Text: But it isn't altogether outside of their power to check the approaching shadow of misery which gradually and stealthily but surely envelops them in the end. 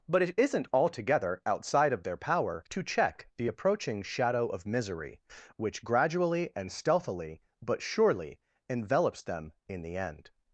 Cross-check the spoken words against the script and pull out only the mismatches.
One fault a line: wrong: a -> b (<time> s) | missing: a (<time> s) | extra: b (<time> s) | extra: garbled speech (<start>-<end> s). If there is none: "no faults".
no faults